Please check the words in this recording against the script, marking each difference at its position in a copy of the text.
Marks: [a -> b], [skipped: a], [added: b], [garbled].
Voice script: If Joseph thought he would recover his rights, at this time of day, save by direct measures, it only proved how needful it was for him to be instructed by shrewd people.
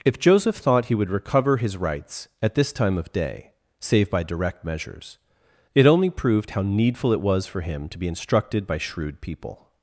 If Joseph thought he would recover his rights, at this time of day, save by direct measures, it only proved how needful it was for him to be instructed by shrewd people.